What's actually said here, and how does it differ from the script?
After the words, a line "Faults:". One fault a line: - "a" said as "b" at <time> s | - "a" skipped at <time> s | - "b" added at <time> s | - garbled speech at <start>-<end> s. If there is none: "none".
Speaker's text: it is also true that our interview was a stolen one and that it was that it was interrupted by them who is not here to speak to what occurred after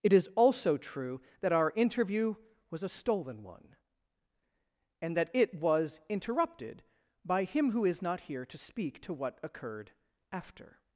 it is also true that our interview was a stolen one and that it was interrupted by him who is not here to speak to what occurred after
Faults:
- "that it was" skipped at 6.0 s
- "them" said as "him" at 7.4 s